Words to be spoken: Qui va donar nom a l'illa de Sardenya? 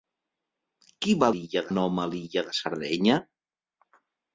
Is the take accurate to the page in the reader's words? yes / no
no